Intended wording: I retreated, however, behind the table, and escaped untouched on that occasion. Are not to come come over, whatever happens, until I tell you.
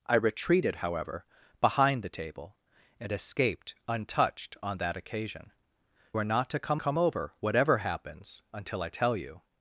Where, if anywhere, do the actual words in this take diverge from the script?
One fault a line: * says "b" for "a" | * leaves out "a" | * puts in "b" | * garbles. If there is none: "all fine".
all fine